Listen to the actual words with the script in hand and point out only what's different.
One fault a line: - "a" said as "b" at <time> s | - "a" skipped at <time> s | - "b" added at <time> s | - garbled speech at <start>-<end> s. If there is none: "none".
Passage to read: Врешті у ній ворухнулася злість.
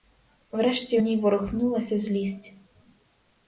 none